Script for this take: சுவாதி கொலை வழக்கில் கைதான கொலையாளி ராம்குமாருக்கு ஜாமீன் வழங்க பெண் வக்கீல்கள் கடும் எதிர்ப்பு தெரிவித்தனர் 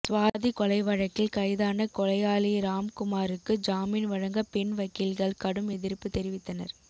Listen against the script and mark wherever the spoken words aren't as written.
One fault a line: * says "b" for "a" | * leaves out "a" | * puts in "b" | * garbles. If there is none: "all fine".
all fine